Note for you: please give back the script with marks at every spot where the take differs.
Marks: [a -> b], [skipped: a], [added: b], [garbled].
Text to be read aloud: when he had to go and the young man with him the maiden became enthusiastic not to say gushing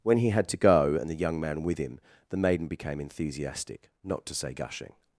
when he had to go and the young man with him the maiden became enthusiastic not to say gushing